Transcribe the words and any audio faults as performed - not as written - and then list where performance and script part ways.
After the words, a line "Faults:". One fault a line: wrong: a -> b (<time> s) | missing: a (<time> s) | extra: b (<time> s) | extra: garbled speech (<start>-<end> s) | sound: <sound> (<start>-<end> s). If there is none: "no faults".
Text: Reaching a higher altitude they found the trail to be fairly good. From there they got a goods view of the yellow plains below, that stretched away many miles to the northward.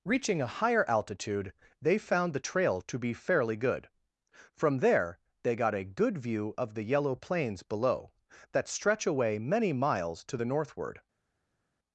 Reaching a higher altitude they found the trail to be fairly good. From there they got a good view of the yellow plains below, that stretch away many miles to the northward.
Faults:
wrong: goods -> good (5.8 s)
wrong: stretched -> stretch (8.7 s)